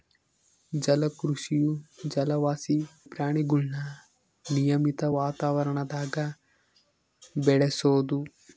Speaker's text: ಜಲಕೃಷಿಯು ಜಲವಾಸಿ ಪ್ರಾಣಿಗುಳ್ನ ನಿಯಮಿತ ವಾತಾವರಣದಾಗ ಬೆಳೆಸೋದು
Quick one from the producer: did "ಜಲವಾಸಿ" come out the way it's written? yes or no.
yes